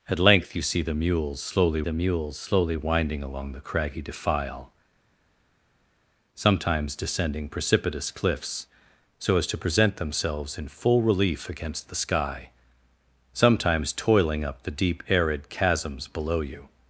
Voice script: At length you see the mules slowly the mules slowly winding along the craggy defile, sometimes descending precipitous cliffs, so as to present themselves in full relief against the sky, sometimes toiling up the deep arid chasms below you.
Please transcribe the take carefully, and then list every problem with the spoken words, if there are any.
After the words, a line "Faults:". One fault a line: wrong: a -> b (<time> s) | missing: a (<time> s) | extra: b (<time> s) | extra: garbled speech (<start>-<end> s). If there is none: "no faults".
At length you see the mules slowly the mules slowly winding along the craggy defile, sometimes descending precipitous cliffs, so as to present themselves in full relief against the sky, sometimes toiling up the deep arid chasms below you.
Faults:
no faults